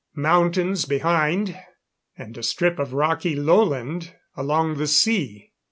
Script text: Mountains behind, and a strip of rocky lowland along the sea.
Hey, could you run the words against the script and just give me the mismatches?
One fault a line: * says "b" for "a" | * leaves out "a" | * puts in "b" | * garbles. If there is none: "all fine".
all fine